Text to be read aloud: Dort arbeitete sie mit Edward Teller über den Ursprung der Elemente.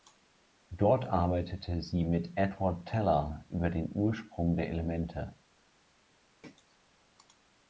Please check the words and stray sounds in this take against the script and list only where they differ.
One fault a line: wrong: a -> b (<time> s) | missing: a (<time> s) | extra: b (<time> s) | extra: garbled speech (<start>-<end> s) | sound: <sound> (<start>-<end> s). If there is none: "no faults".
sound: throat clearing (6.4-6.8 s)